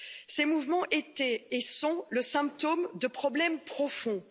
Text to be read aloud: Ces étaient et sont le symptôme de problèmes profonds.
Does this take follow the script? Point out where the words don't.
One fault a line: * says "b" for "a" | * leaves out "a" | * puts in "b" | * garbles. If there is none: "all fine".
* puts in "mouvements"